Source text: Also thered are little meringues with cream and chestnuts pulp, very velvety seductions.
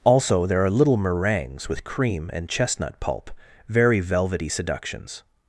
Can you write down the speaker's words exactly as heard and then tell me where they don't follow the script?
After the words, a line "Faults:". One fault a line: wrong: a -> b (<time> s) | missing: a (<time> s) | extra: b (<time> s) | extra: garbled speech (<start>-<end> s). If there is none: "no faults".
Also there are little meringues with cream and chestnut pulp, very velvety seductions.
Faults:
wrong: thered -> there (0.5 s)
wrong: chestnuts -> chestnut (2.5 s)